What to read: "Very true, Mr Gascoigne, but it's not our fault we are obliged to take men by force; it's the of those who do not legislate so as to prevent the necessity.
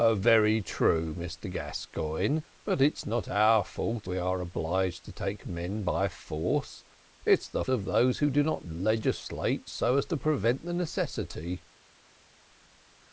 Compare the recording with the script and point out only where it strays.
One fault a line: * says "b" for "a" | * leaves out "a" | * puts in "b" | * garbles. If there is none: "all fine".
all fine